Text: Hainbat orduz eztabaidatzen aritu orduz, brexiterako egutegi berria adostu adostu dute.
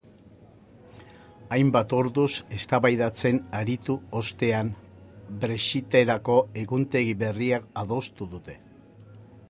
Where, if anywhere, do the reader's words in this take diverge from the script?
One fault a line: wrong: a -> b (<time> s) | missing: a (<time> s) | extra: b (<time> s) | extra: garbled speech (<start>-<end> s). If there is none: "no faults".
wrong: orduz -> ostean (4.2 s)
missing: adostu (8.3 s)